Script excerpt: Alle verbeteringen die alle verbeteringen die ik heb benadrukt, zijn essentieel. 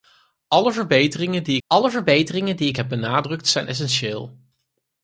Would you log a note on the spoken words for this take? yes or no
no